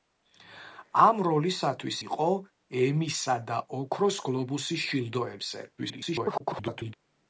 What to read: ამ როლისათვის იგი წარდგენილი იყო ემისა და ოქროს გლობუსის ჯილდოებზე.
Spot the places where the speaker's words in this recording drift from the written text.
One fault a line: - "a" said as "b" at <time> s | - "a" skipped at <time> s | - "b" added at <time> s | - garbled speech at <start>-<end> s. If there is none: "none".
- "იგი წარდგენილი" skipped at 2.0 s
- garbled speech at 5.8-6.9 s